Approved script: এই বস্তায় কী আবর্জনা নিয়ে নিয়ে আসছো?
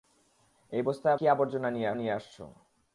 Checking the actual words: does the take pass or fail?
pass